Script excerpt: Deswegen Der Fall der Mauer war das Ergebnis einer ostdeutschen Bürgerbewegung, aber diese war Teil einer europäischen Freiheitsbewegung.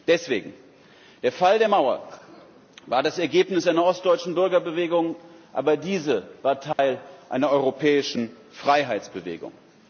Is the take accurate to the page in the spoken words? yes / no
yes